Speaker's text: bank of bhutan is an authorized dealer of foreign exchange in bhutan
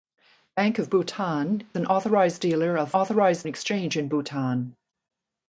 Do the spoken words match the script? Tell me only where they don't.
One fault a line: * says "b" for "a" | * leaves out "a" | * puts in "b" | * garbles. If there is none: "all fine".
* leaves out "is"
* says "authorized" for "foreign"